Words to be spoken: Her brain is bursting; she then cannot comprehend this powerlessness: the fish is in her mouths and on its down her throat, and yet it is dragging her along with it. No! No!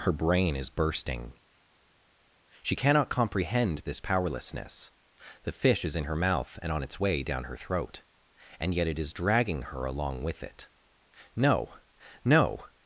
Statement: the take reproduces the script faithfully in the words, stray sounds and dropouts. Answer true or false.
false